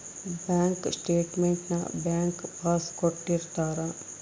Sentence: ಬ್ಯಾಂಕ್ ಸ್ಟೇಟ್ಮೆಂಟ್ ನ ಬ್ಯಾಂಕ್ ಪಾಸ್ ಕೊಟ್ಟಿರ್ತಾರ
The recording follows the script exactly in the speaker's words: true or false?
true